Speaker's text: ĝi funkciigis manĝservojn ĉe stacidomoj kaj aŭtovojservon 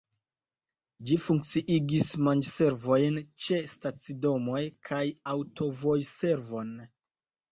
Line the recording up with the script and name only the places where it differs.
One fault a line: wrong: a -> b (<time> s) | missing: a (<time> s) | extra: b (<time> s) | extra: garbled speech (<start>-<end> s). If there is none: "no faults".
no faults